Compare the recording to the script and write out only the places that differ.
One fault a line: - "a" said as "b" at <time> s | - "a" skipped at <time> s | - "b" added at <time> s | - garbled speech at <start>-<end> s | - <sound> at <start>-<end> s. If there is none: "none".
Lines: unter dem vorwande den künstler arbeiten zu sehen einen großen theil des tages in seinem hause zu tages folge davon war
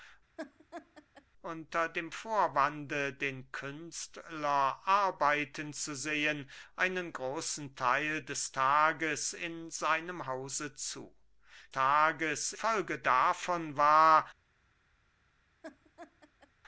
- laugh at 0.4-1.3 s
- laugh at 15.6-16.5 s